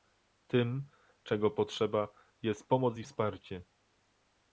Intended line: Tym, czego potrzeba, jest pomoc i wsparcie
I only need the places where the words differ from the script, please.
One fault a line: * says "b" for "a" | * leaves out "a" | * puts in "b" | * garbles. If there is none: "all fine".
all fine